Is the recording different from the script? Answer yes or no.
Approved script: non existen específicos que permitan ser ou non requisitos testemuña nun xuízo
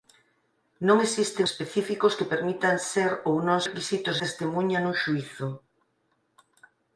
no